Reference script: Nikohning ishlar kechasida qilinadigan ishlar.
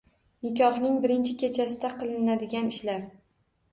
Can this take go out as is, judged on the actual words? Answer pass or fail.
fail